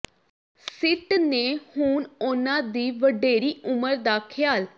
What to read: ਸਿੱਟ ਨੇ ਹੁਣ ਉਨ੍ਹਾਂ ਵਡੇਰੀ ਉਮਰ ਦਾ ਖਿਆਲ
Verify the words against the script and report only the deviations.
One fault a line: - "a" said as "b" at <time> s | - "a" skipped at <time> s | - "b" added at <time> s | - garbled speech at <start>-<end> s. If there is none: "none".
- "ਦੀ" added at 2.6 s